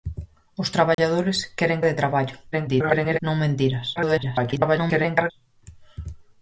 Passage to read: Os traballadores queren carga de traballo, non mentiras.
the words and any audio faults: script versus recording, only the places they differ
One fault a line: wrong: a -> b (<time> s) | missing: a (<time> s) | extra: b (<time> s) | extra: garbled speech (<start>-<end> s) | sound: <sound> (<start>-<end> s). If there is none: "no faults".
sound: dropout (0.9-1.0 s)
missing: carga (1.9 s)
extra: garbled speech (2.5-3.2 s)
extra: garbled speech (4.0-5.3 s)